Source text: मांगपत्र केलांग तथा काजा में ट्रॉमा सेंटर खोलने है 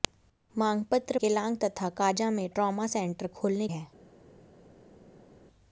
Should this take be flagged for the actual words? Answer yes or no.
no